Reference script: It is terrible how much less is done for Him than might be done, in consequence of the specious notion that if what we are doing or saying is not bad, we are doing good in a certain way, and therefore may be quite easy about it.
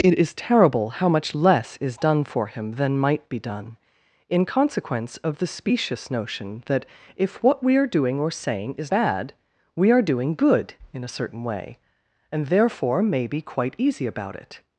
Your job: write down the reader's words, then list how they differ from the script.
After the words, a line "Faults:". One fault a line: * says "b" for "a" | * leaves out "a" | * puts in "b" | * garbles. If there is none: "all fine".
It is terrible how much less is done for Him than might be done, in consequence of the specious notion that if what we are doing or saying is bad, we are doing good in a certain way, and therefore may be quite easy about it.
Faults:
* leaves out "not"